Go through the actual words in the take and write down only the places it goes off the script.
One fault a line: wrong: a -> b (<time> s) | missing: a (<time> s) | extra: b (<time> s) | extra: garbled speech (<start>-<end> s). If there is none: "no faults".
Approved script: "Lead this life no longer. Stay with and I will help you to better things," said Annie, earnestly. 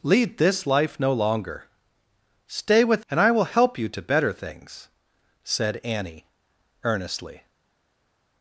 no faults